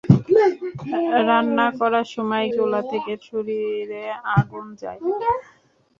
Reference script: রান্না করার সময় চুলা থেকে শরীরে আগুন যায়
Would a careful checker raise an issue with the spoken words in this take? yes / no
no